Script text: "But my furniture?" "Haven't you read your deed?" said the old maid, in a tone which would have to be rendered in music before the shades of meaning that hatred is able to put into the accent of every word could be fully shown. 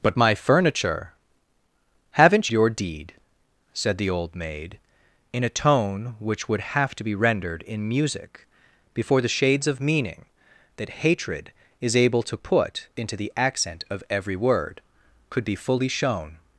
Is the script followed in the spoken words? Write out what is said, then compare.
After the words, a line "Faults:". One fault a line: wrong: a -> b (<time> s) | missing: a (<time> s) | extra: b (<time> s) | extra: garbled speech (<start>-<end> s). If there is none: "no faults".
"But my furniture?" "Haven't your deed?" said the old maid, in a tone which would have to be rendered in music before the shades of meaning that hatred is able to put into the accent of every word could be fully shown.
Faults:
missing: you read (2.5 s)